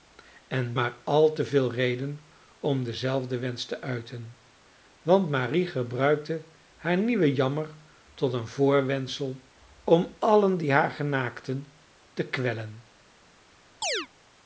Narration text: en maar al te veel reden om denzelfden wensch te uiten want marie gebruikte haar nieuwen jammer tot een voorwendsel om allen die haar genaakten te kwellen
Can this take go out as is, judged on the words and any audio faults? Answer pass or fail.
fail